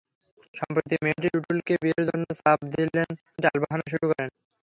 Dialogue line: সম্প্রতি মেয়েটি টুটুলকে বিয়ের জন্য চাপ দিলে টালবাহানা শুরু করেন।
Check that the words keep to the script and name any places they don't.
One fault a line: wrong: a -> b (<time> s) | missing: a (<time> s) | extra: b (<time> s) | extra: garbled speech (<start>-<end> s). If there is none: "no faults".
no faults